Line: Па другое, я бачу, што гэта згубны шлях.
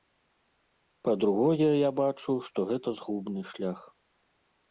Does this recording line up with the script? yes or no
yes